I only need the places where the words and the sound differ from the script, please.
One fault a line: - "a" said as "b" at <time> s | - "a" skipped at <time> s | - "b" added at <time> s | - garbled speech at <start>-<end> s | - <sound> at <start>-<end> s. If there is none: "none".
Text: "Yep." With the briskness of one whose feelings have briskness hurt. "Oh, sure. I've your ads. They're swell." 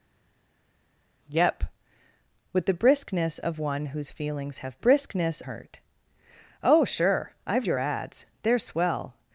none